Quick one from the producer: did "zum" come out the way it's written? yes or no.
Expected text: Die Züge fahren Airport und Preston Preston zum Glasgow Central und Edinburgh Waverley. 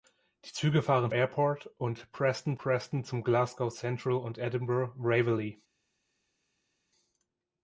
yes